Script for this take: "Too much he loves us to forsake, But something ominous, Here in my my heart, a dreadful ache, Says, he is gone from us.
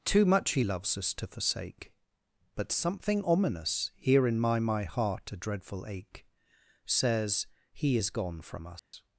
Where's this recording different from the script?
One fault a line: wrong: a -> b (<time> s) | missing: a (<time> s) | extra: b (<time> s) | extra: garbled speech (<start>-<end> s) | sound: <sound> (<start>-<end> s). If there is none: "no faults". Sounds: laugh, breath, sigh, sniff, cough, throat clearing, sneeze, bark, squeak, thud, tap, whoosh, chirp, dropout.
sound: dropout (8.8-8.9 s)